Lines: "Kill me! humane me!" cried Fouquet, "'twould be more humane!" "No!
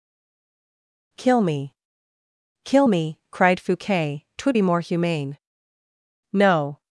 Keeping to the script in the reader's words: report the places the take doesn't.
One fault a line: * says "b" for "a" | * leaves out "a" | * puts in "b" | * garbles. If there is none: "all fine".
* says "kill" for "humane"